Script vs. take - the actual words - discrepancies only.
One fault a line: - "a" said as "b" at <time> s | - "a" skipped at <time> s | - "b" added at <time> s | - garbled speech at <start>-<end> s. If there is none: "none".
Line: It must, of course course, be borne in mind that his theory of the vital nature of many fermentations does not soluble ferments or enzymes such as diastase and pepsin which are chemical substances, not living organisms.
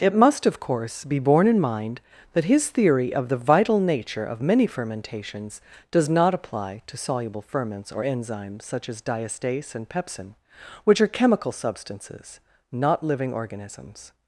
- "course" skipped at 1.1 s
- "apply to" added at 6.3 s